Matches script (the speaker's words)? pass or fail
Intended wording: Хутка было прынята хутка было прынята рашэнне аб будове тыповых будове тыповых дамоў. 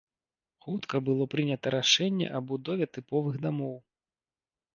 fail